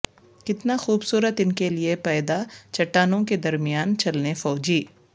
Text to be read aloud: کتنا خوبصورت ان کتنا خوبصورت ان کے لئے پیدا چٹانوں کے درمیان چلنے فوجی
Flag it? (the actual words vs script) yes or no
yes